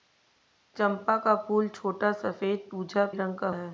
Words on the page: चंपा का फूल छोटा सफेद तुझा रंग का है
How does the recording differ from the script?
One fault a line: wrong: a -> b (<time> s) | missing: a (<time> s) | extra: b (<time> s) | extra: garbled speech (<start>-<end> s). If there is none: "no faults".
no faults